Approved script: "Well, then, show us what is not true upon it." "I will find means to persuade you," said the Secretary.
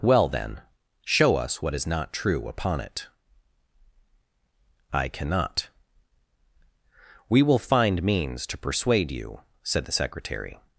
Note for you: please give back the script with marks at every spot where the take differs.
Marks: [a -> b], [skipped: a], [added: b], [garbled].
"Well, then, show us what is not true upon it." "I [added: cannot We] will find means to persuade you," said the Secretary.